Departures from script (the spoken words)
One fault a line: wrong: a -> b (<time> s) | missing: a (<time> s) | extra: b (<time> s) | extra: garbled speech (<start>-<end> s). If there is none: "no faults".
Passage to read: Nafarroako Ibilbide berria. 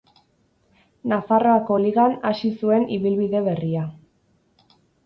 extra: Ligan hasi zuen (1.8 s)